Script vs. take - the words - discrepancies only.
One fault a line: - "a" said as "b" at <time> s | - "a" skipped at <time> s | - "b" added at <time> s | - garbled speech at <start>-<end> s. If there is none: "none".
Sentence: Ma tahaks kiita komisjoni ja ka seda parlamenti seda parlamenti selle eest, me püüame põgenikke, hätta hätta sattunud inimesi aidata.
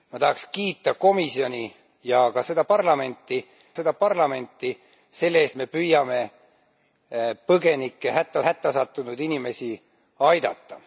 none